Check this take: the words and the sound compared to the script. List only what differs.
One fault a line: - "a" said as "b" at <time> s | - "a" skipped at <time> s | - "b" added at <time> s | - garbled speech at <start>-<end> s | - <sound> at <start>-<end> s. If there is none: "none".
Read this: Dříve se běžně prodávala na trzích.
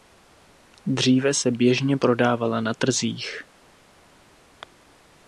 none